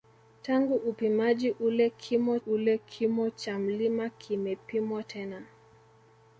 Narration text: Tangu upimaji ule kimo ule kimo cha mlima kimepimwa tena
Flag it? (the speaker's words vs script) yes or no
no